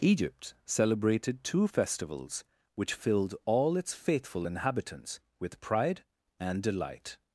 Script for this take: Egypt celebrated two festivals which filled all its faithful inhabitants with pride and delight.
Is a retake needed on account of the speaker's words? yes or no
no